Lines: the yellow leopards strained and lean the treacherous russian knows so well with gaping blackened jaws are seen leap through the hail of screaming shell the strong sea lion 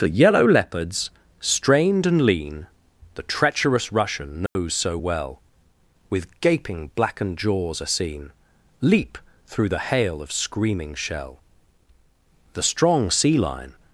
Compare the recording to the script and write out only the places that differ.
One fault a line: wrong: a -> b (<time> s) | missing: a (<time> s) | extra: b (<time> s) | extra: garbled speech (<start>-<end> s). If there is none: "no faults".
no faults